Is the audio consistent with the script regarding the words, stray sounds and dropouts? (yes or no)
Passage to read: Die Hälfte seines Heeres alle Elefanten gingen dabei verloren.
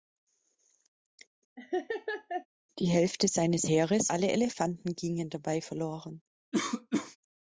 no